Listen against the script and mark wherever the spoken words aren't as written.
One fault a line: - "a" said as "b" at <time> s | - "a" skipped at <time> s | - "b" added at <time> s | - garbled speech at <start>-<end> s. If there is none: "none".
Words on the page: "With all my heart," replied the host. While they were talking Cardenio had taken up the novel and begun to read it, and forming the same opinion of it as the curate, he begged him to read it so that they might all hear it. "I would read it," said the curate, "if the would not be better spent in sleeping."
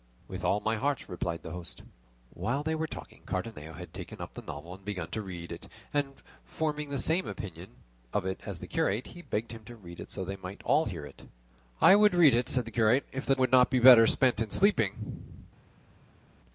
none